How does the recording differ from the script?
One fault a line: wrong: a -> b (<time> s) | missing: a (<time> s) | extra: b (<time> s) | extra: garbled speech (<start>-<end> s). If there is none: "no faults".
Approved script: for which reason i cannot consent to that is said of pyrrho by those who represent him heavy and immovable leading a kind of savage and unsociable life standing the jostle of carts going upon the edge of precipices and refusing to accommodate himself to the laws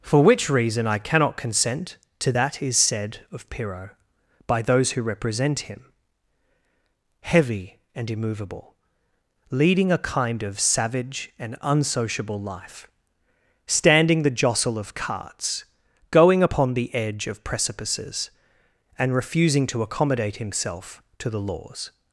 no faults